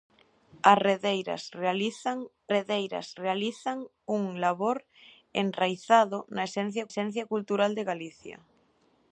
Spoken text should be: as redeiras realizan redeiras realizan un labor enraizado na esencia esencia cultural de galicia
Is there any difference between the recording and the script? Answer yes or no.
no